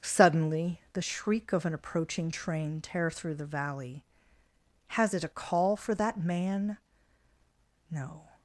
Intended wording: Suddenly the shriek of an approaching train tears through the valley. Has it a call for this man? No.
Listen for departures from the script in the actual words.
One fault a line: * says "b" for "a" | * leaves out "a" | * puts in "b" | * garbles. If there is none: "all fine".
* says "tear" for "tears"
* says "that" for "this"